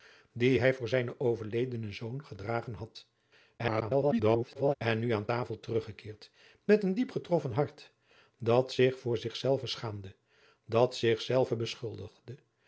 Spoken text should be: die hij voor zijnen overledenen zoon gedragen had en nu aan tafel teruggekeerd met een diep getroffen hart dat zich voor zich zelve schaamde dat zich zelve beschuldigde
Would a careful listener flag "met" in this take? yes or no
no